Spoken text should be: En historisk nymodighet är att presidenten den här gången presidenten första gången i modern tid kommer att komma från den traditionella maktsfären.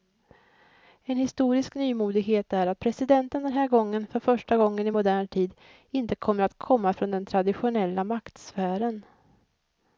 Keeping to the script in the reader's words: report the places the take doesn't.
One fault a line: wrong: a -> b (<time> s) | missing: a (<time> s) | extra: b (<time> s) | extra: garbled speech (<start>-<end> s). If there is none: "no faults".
wrong: presidenten -> för (4.1 s)
extra: inte (5.9 s)